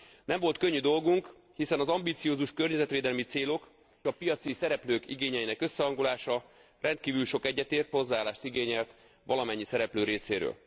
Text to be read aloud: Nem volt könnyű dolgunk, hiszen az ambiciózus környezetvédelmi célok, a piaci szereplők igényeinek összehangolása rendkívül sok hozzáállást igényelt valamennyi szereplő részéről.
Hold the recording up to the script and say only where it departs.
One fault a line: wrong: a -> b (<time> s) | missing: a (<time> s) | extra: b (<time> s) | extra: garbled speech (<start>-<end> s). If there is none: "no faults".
no faults